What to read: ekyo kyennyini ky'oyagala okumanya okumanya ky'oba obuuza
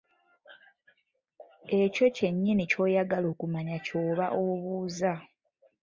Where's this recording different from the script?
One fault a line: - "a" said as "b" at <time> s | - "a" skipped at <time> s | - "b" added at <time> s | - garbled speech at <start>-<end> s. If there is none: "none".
- "okumanya" skipped at 3.8 s